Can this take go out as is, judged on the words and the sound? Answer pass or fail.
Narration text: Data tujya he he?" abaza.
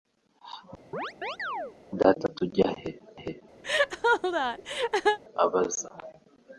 fail